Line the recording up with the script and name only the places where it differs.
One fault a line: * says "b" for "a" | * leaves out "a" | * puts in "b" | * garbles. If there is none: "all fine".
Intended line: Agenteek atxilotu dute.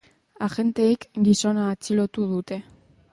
* puts in "gizona"